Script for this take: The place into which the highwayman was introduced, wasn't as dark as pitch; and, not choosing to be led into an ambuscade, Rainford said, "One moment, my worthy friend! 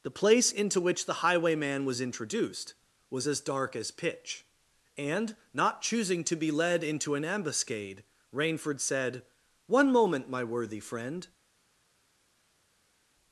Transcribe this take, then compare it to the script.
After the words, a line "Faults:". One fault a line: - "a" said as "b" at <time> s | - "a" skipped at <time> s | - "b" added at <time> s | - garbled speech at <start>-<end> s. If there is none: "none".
The place into which the highwayman was introduced, was as dark as pitch; and, not choosing to be led into an ambuscade, Rainford said, "One moment, my worthy friend!
Faults:
- "wasn't" said as "was" at 3.1 s